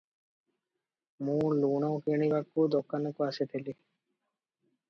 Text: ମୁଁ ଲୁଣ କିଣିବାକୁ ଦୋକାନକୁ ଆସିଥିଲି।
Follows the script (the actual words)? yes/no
yes